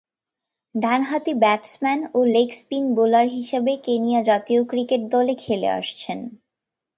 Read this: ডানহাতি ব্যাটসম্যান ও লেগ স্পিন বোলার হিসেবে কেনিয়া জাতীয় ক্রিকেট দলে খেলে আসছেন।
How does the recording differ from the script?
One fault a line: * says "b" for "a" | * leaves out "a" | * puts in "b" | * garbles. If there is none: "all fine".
all fine